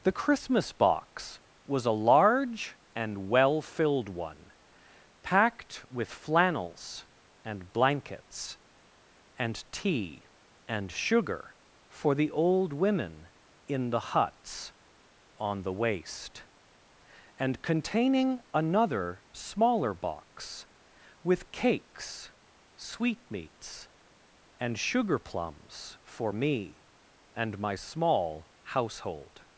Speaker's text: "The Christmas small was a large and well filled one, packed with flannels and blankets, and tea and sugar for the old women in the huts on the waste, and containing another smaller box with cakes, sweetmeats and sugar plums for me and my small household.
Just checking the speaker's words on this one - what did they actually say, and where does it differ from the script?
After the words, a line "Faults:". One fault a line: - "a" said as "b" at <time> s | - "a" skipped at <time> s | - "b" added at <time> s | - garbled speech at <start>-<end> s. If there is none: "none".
"The Christmas box was a large and well filled one, packed with flannels and blankets, and tea and sugar for the old women in the huts on the waste, and containing another smaller box with cakes, sweetmeats and sugar plums for me and my small household.
Faults:
- "small" said as "box" at 0.7 s